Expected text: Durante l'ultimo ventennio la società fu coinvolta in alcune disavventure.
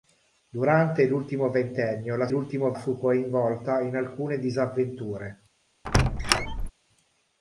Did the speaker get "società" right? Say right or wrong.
wrong